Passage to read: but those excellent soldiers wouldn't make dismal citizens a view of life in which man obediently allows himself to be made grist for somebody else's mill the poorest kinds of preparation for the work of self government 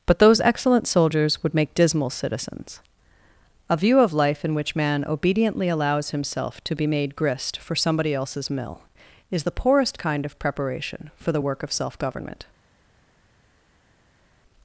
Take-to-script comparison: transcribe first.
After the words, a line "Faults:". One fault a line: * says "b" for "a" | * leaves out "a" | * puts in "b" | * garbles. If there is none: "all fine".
but those excellent soldiers would make dismal citizens a view of life in which man obediently allows himself to be made grist for somebody else's mill is the poorest kind of preparation for the work of self government
Faults:
* says "would" for "wouldn't"
* puts in "is"
* says "kind" for "kinds"